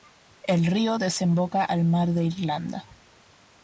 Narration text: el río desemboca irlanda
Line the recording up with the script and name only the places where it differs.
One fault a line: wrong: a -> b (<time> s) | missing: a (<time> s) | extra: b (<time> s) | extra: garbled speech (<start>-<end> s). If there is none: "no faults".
extra: al mar de (1.6 s)